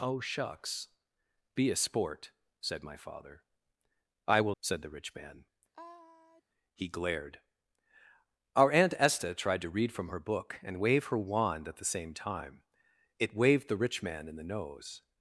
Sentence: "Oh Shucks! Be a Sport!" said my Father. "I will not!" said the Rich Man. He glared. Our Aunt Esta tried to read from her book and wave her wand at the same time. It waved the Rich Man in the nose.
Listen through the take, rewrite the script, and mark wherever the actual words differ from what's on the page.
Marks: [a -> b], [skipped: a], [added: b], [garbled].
"Oh Shucks! Be a Sport!" said my Father. "I will [skipped: not!"] said the Rich Man. He glared. Our Aunt Esta tried to read from her book and wave her wand at the same time. It waved the Rich Man in the nose.